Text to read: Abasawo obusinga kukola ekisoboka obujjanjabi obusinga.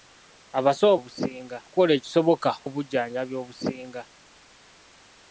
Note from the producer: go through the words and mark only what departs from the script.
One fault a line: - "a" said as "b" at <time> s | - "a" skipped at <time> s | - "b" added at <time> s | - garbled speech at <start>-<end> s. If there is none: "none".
none